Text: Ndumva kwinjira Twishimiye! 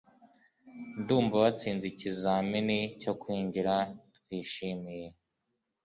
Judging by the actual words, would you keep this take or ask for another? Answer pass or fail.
fail